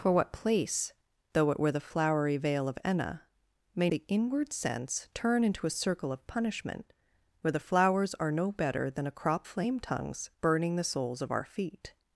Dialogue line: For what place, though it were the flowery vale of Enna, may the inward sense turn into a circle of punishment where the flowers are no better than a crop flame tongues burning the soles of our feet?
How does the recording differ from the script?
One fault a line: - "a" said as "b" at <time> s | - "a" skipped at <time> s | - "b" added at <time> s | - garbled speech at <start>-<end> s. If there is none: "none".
none